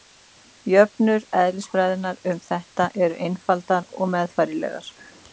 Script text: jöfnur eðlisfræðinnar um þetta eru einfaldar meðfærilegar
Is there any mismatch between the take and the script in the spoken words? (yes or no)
yes